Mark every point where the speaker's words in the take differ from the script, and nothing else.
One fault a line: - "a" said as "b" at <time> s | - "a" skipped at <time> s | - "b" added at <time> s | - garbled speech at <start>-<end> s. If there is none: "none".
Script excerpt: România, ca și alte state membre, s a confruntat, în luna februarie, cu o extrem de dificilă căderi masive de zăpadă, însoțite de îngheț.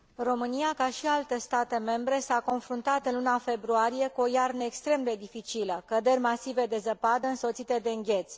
- "iarnă" added at 4.3 s